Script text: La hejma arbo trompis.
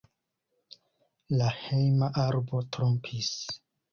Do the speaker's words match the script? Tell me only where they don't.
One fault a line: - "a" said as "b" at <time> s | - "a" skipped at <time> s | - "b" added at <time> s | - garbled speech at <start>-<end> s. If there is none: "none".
none